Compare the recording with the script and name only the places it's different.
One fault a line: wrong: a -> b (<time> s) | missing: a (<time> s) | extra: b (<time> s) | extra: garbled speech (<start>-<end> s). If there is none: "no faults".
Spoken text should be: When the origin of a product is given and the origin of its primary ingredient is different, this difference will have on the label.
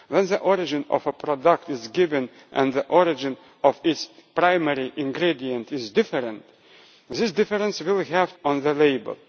no faults